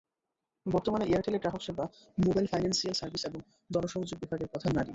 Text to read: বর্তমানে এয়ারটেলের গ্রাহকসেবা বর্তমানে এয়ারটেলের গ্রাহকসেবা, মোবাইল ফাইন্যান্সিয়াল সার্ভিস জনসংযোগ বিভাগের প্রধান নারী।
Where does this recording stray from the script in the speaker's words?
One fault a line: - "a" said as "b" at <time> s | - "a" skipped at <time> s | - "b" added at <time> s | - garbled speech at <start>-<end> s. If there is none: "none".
- "বর্তমানে এয়ারটেলের গ্রাহকসেবা" skipped at 1.9 s
- "এবং" added at 3.2 s